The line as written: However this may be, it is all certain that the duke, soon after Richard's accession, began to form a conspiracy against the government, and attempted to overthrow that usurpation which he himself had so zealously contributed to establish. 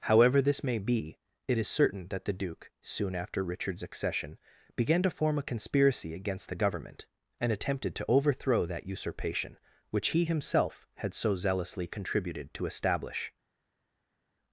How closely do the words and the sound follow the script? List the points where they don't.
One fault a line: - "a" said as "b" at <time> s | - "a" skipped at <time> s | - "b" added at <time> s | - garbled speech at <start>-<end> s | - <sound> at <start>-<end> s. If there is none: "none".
- "all" skipped at 1.7 s